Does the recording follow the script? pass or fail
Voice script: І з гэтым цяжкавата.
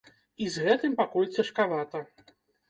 fail